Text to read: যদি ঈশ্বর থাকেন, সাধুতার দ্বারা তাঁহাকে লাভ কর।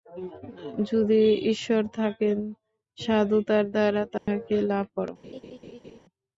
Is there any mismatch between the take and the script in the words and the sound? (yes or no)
yes